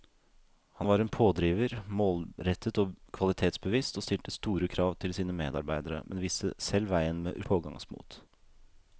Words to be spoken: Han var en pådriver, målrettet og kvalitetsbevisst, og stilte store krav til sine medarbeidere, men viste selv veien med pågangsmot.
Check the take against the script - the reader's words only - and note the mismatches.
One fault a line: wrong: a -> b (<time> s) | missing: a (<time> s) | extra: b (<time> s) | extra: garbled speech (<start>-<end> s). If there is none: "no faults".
no faults